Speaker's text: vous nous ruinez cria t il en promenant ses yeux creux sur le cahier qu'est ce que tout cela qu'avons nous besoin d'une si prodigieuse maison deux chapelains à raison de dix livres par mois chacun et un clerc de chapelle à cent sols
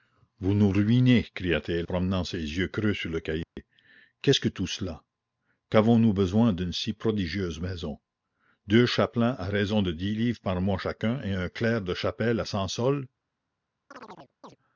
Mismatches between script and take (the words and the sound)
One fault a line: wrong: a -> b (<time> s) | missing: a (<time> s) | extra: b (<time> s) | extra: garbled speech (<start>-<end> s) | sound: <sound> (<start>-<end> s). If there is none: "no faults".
missing: en (1.9 s)
sound: dropout (3.4-3.6 s)
sound: chirp (13.9-14.6 s)